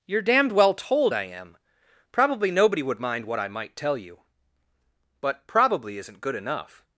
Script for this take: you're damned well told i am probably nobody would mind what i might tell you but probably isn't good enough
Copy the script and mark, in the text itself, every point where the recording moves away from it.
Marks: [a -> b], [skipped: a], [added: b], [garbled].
you're damned well told i am probably nobody would mind what i might tell you but probably isn't good enough